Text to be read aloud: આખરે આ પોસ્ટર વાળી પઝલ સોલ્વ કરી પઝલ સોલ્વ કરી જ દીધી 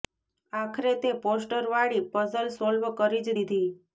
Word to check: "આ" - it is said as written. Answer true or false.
false